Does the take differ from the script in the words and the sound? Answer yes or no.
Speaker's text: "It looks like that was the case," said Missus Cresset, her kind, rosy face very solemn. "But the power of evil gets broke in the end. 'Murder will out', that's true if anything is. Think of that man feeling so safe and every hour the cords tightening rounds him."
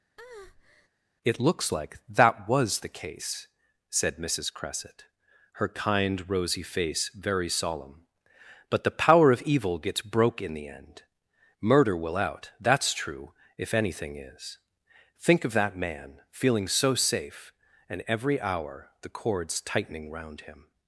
yes